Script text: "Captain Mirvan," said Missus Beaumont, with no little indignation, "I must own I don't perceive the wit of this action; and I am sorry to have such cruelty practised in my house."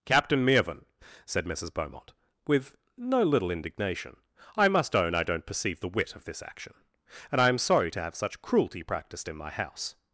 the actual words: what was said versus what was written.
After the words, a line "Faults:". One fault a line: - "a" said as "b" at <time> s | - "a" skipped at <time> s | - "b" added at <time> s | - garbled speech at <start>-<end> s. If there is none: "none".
"Captain Mirvan," said Missus Beaumont, with no little indignation, "I must own I don't perceive the wit of this action; and I am sorry to have such cruelty practised in my house."
Faults:
none